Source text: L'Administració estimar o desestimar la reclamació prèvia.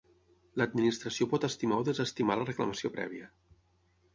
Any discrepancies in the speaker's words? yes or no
yes